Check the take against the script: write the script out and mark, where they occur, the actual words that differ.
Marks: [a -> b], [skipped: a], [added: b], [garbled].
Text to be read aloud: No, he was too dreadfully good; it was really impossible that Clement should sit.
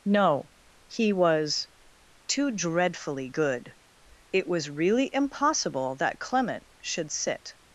No, he was too dreadfully good; it was really impossible that Clement should sit.